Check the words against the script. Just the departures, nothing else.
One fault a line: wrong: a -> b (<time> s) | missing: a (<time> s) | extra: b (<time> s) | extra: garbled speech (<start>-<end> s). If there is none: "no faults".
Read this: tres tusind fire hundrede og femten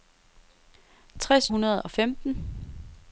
missing: tusind fire (1.5 s)